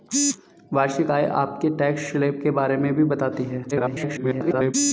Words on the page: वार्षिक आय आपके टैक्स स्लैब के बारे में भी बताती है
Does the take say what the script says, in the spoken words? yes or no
no